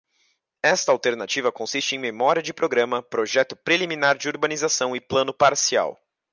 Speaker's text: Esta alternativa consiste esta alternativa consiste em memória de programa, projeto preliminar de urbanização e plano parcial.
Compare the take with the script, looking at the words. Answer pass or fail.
fail